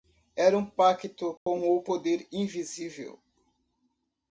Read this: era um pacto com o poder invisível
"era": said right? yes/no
yes